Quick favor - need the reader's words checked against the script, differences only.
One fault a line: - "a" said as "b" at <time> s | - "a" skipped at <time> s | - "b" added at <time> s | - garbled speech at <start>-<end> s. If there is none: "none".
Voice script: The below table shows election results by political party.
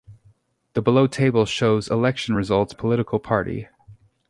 - "by" skipped at 2.7 s